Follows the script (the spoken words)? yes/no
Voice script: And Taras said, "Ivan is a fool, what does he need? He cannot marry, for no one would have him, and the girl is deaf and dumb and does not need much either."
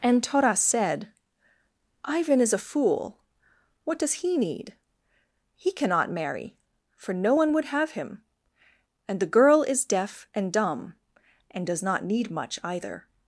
yes